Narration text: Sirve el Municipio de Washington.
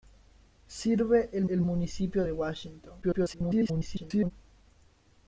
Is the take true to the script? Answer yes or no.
no